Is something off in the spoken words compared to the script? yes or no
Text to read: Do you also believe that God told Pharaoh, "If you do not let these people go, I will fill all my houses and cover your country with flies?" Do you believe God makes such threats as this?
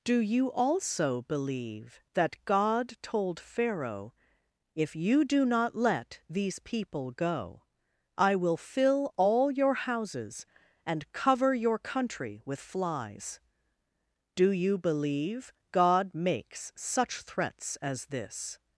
yes